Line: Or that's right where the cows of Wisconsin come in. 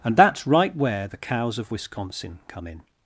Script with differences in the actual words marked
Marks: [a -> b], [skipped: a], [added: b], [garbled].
[Or -> And] that's right where the cows of Wisconsin come in.